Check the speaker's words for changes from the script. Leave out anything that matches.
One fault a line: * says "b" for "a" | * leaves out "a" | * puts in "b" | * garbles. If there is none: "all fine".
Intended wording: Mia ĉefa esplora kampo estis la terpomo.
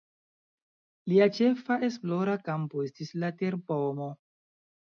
* says "Lia" for "Mia"